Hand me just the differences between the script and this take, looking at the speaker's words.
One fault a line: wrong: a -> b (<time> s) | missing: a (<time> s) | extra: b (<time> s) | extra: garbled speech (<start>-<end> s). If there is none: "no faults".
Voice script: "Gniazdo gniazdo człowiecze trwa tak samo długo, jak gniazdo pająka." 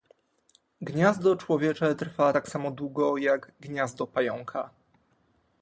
missing: gniazdo (1.4 s)